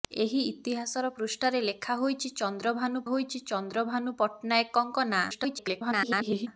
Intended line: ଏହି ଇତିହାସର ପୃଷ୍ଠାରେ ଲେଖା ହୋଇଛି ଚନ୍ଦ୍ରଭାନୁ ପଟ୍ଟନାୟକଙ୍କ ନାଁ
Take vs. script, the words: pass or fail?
fail